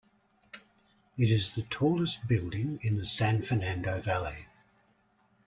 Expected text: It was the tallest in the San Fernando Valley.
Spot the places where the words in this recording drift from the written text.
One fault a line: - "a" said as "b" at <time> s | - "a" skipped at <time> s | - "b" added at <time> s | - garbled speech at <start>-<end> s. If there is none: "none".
- "was" said as "is" at 1.3 s
- "building" added at 2.3 s